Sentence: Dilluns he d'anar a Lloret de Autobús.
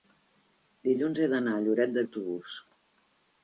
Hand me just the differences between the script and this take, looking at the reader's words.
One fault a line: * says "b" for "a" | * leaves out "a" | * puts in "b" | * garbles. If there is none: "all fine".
all fine